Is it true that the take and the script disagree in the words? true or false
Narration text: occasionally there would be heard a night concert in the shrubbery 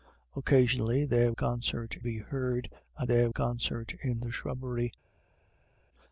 true